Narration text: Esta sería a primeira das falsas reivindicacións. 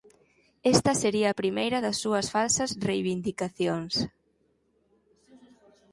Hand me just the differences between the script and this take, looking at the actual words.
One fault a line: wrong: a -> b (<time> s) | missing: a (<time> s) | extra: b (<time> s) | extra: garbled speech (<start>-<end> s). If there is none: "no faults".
extra: súas (2.0 s)